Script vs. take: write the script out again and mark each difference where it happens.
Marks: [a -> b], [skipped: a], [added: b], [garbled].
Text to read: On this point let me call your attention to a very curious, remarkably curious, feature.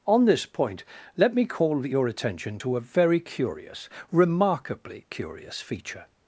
On this point let me call your attention to a very curious, remarkably curious, feature.